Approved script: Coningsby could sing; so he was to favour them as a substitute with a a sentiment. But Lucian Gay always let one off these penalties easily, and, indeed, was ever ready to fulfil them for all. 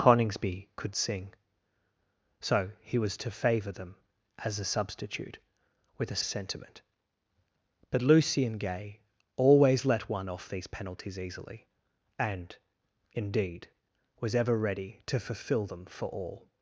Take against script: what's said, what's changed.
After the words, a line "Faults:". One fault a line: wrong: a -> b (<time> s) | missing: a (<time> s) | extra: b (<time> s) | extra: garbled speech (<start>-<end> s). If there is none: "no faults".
Coningsby could sing; so he was to favour them as a substitute with a a sentiment. But Lucian Gay always let one off these penalties easily, and, indeed, was ever ready to fulfil them for all.
Faults:
no faults